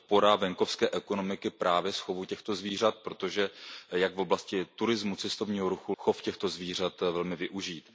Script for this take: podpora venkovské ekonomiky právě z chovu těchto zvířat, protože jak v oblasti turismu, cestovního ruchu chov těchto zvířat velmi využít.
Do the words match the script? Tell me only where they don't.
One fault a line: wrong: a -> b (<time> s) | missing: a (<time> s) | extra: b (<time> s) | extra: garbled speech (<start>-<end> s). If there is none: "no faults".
no faults